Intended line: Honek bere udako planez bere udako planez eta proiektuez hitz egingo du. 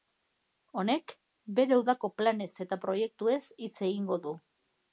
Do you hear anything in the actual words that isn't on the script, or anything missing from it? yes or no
yes